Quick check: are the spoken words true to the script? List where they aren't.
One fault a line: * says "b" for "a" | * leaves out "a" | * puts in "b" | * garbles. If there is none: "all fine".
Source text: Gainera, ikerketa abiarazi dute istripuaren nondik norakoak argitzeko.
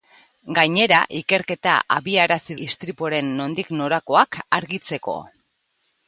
* leaves out "dute"